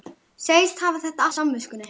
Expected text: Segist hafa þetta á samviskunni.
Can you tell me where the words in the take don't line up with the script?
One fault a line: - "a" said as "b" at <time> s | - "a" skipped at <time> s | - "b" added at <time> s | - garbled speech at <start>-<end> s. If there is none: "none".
none